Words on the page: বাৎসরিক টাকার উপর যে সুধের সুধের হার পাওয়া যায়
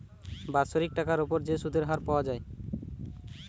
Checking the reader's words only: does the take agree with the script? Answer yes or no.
no